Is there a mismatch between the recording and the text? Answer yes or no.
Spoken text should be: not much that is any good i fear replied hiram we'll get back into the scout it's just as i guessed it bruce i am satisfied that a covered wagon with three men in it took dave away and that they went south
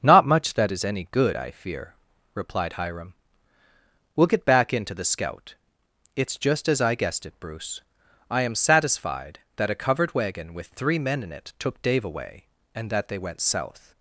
no